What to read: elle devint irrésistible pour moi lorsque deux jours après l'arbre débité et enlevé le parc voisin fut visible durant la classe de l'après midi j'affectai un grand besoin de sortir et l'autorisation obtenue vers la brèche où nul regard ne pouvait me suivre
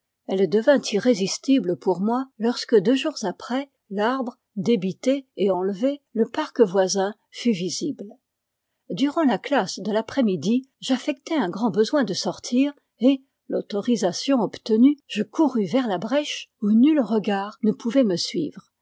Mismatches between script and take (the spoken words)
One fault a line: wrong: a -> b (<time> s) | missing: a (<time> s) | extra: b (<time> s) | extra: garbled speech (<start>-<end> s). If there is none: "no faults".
extra: je courus (15.1 s)